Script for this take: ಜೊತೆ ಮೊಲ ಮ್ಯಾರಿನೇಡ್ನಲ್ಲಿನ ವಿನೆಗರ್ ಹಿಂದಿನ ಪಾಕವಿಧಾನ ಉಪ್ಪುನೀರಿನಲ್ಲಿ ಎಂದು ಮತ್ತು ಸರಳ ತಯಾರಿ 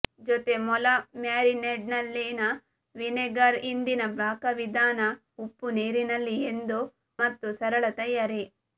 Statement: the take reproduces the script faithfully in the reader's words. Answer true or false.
true